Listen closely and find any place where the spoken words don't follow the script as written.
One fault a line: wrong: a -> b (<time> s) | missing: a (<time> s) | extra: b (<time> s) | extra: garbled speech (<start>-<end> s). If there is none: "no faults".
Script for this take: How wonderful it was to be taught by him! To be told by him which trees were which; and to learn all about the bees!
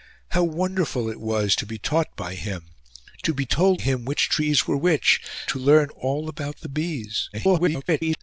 missing: by (3.8 s)
missing: and (5.2 s)
extra: garbled speech (7.3-8.2 s)